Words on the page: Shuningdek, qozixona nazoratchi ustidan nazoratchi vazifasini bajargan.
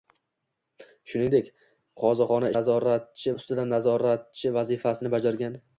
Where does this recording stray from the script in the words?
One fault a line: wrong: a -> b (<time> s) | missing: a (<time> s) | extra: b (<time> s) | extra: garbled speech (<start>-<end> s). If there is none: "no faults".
no faults